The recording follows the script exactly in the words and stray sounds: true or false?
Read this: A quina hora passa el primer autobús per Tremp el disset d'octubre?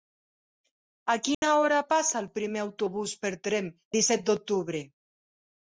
false